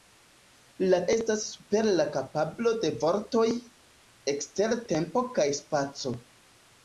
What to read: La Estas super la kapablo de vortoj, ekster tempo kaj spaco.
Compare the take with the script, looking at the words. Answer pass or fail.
pass